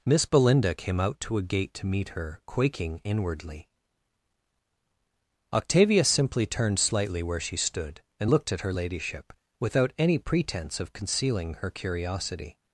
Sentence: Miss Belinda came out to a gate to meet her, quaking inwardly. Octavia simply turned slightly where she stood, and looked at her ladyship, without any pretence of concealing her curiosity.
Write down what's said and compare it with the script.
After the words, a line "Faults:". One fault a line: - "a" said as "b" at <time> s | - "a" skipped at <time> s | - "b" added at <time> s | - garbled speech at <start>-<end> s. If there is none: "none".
Miss Belinda came out to a gate to meet her, quaking inwardly. Octavia simply turned slightly where she stood, and looked at her ladyship, without any pretence of concealing her curiosity.
Faults:
none